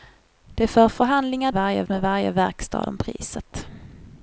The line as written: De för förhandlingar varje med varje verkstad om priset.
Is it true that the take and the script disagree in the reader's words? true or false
false